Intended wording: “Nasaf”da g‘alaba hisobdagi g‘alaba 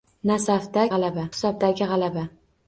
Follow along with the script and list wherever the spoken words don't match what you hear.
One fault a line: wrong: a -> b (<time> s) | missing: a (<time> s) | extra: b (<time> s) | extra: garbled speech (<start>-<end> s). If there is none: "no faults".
no faults